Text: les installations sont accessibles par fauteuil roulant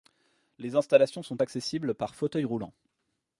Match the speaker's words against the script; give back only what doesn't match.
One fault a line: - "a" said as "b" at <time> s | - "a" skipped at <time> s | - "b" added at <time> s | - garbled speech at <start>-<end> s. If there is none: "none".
none